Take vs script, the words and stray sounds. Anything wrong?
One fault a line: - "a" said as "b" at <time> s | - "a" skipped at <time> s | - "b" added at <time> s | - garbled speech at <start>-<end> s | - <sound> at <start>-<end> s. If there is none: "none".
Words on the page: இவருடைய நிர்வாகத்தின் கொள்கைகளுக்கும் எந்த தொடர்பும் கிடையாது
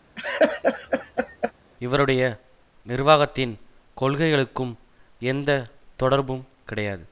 - laugh at 0.2-1.5 s